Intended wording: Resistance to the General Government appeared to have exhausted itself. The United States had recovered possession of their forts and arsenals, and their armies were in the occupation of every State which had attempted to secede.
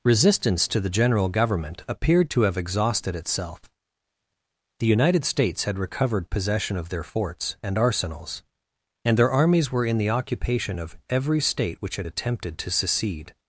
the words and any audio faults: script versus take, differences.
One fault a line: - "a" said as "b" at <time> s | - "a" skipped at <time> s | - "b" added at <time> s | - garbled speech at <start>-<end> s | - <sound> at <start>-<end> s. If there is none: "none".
none